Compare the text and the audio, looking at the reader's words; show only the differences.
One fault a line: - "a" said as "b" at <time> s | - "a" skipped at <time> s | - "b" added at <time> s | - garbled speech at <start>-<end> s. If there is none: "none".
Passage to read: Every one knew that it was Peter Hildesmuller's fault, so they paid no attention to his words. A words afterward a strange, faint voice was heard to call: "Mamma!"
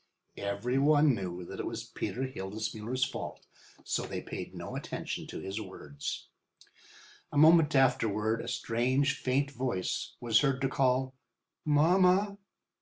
- "words" said as "moment" at 7.4 s